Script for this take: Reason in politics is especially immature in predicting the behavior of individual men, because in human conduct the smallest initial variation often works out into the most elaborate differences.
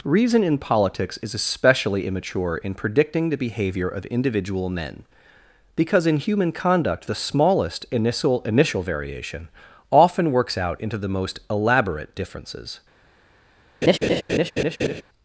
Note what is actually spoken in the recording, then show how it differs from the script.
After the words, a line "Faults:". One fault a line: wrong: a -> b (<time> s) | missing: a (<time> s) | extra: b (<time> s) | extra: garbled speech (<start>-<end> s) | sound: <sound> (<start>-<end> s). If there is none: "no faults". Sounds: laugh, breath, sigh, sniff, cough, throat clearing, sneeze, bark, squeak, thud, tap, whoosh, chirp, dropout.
Reason in politics is especially immature in predicting the behavior of individual men, because in human conduct the smallest initial initial variation often works out into the most elaborate differences.
Faults:
extra: initial (8.4 s)
sound: laugh (13.8-15.0 s)